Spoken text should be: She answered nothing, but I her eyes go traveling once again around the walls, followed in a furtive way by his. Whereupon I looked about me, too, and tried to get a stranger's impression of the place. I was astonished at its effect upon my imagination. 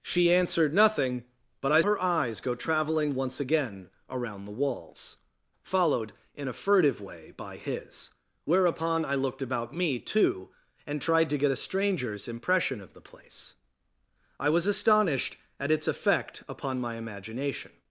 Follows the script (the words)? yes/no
yes